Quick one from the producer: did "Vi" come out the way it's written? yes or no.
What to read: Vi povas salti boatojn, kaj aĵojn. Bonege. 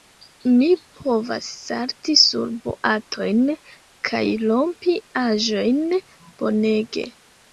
no